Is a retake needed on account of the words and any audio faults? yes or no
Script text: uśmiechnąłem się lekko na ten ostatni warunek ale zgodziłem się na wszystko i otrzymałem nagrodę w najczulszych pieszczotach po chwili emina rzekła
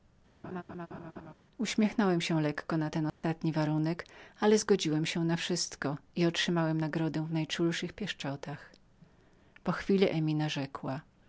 yes